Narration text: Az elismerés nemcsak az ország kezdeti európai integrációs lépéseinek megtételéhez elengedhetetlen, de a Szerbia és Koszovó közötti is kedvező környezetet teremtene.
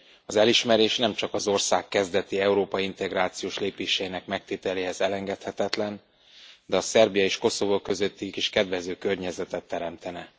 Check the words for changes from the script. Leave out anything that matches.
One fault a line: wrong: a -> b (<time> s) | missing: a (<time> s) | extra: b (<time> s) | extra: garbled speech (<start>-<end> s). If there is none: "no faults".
no faults